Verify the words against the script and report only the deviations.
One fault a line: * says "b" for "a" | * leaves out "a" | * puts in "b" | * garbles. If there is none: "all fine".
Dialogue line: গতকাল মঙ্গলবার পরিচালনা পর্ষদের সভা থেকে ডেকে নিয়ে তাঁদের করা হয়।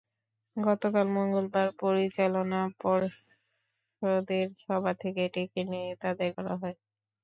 all fine